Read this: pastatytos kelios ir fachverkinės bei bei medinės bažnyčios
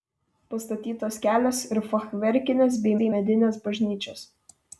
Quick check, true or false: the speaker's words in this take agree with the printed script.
true